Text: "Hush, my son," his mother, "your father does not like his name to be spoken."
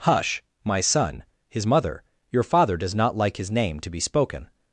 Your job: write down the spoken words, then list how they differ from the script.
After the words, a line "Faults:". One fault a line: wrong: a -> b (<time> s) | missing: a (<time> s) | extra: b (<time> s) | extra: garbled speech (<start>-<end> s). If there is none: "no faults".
"Hush, my son," his mother, "your father does not like his name to be spoken."
Faults:
no faults